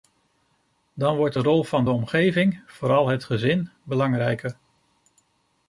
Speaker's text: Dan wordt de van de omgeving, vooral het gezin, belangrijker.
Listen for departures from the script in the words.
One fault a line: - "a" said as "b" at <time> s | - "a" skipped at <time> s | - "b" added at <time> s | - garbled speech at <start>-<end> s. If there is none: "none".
- "rol" added at 1.4 s